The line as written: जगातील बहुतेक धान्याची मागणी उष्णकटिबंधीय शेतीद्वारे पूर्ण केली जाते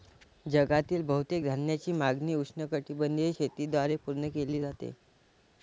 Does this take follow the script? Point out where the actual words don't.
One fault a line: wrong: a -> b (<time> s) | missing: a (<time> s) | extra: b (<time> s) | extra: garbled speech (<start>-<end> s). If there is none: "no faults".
no faults